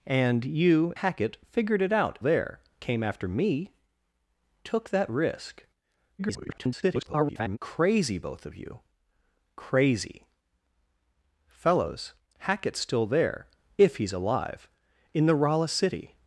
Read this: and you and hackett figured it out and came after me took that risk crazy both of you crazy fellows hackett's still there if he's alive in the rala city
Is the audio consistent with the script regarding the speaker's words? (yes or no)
no